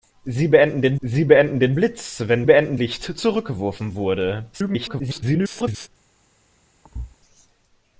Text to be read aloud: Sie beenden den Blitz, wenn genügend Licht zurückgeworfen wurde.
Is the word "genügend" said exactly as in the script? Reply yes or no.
no